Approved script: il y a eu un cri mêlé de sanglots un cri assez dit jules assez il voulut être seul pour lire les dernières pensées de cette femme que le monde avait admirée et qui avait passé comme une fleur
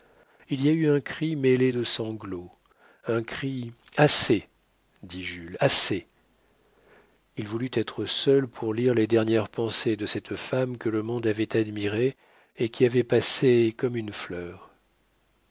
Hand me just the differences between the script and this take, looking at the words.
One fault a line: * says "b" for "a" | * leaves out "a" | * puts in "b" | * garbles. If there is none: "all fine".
all fine